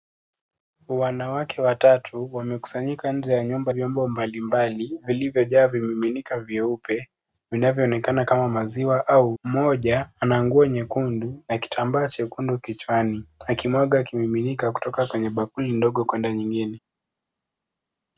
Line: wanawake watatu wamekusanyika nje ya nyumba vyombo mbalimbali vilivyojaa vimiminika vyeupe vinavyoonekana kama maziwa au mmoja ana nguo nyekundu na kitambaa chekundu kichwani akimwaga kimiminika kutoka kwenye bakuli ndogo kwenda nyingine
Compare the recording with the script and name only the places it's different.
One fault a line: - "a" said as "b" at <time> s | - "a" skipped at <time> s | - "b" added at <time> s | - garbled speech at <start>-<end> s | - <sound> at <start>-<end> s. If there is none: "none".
none